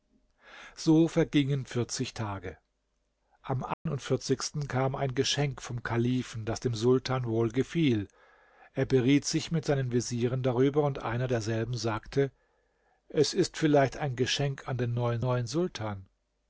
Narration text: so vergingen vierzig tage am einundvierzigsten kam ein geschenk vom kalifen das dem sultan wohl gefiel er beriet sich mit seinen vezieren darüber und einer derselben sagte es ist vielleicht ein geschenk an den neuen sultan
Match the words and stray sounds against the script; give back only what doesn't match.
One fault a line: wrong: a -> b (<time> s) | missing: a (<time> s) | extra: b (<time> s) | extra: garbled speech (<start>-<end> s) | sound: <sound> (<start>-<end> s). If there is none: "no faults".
sound: dropout (3.7-3.9 s)
extra: neuen (15.2 s)